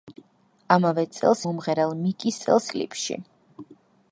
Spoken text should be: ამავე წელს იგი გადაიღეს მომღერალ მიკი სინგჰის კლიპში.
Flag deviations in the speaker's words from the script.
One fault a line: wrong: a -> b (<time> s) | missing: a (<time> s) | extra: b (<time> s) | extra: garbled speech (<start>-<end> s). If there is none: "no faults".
missing: იგი გადაიღეს (1.4 s)
wrong: სინგჰის -> წელს (2.4 s)